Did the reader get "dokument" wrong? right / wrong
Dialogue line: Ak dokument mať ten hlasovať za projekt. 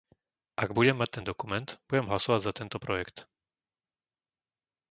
wrong